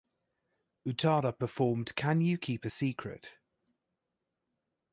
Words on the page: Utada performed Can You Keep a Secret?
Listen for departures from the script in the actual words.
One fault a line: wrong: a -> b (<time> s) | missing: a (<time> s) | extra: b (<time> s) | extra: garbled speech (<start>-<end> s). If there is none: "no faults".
no faults